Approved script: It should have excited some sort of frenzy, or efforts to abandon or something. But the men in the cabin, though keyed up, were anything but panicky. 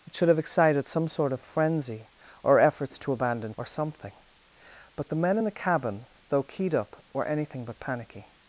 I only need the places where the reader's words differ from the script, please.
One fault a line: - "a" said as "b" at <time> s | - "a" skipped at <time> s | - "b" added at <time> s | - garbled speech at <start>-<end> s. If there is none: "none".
none